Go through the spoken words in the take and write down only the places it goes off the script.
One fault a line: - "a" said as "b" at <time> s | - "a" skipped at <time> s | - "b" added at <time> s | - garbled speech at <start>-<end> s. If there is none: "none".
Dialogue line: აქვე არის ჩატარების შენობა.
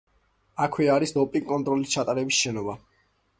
- "დოპინგ კონტროლის" added at 1.2 s